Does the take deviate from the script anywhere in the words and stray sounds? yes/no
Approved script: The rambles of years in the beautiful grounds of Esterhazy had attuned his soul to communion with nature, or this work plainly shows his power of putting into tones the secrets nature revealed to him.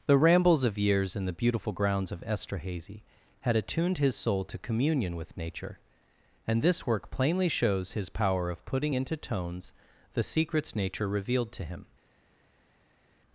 yes